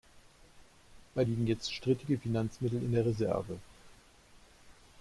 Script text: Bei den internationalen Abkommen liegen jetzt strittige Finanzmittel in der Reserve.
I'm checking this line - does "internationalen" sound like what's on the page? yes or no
no